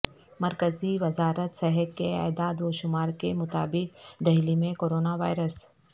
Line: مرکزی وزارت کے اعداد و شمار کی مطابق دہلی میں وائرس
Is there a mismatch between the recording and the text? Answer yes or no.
yes